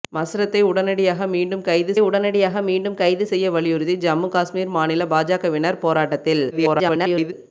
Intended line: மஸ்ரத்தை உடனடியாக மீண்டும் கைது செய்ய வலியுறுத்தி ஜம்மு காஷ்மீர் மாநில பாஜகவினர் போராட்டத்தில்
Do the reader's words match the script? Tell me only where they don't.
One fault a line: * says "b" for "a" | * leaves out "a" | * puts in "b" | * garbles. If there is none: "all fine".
* puts in "உடனடியாக மீண்டும் கைது"
* garbles